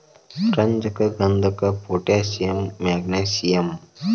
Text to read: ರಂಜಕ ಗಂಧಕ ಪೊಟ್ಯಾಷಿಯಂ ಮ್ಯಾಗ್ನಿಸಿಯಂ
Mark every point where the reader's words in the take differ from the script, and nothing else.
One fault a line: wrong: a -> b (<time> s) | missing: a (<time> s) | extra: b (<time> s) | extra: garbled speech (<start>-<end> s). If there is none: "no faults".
no faults